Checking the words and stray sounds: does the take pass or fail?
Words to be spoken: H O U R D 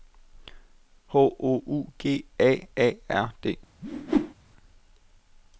fail